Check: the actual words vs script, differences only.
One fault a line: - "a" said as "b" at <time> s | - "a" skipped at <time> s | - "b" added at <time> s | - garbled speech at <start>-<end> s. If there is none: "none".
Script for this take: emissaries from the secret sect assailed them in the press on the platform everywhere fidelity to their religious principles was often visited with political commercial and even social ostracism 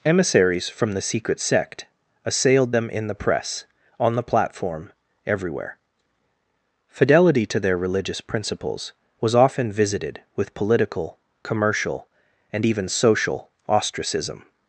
none